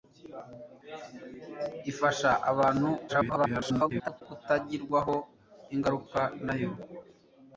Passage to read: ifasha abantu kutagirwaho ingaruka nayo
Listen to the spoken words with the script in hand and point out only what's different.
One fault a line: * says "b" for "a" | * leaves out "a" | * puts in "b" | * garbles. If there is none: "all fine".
* garbles